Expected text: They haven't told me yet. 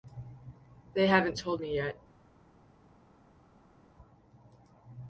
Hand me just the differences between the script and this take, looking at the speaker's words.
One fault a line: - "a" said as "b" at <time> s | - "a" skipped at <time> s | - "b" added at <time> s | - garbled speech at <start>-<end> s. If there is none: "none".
none